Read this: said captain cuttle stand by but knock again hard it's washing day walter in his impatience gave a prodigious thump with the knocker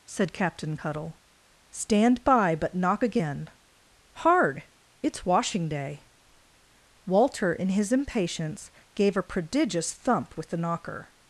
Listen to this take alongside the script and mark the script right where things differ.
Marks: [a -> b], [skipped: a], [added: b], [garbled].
said captain cuttle stand by but knock again hard it's washing day walter in his impatience gave a prodigious thump with the knocker